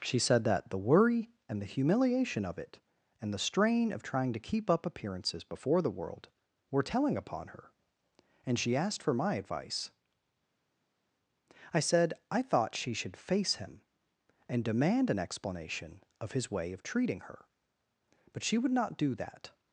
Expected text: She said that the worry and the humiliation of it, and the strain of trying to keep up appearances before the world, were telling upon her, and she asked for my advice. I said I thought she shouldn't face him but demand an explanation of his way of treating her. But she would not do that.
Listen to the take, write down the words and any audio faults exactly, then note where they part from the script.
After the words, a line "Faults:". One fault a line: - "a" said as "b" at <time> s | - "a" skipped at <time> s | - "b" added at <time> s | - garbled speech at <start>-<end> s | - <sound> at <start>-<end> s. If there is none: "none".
She said that the worry and the humiliation of it, and the strain of trying to keep up appearances before the world, were telling upon her, and she asked for my advice. I said I thought she should face him and demand an explanation of his way of treating her. But she would not do that.
Faults:
- "shouldn't" said as "should" at 12.9 s
- "but" said as "and" at 14.5 s